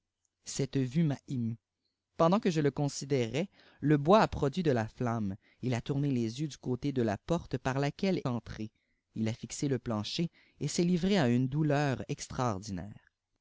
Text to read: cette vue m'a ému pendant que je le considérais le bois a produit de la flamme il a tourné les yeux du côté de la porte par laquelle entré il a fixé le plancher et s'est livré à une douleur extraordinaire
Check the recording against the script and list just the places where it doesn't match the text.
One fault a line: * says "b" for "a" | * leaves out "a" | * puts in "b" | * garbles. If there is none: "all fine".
all fine